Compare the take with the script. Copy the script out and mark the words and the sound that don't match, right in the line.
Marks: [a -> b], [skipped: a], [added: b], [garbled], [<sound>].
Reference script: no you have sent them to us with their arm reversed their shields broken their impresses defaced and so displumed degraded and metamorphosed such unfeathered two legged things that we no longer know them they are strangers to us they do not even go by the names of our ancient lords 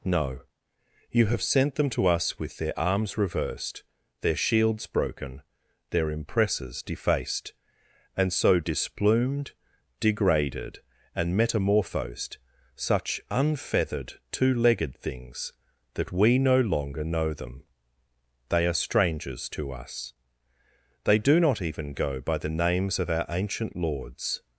no you have sent them to us with their [arm -> arms] reversed their shields broken their impresses defaced and so displumed degraded and metamorphosed such unfeathered two legged things that we no longer know them they are strangers to us they do not even go by the names of our ancient lords